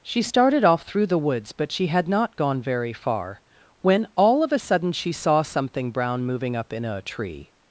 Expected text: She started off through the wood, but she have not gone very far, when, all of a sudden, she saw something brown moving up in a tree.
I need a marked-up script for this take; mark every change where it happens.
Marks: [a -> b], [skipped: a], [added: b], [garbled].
She started off through the [wood, -> woods] but she [have -> had] not gone very far, when, all of a sudden, she saw something brown moving up in a tree.